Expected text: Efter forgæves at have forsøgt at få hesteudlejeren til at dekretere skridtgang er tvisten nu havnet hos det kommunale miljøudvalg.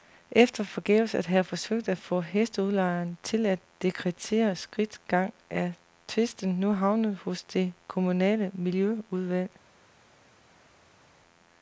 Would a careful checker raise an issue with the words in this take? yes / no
no